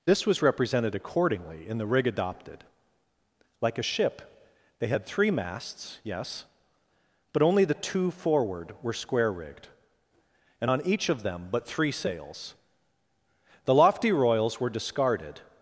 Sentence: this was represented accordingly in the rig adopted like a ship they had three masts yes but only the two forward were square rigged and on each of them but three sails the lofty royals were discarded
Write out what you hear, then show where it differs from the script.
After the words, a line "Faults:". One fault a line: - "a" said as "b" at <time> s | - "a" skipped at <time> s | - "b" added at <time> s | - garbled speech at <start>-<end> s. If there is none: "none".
this was represented accordingly in the rig adopted like a ship they had three masts yes but only the two forward were square rigged and on each of them but three sails the lofty royals were discarded
Faults:
none